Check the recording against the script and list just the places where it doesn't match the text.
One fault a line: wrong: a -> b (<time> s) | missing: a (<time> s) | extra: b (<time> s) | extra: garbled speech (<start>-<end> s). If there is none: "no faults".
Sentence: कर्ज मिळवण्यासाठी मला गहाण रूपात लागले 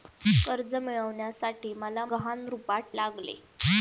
no faults